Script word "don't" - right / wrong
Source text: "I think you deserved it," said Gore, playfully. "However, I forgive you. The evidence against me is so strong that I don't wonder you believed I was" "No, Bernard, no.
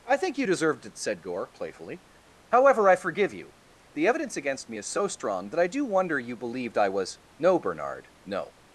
wrong